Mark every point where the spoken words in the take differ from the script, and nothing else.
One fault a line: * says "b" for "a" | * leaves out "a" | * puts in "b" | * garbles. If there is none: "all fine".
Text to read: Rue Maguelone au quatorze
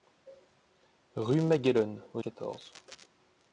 all fine